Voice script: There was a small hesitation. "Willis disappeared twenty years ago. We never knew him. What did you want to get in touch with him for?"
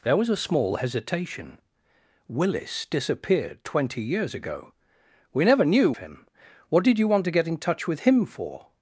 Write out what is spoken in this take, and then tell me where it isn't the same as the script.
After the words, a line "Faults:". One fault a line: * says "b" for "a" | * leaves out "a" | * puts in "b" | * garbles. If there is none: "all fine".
There was a small hesitation. "Willis disappeared twenty years ago. We never knew him. What did you want to get in touch with him for?"
Faults:
all fine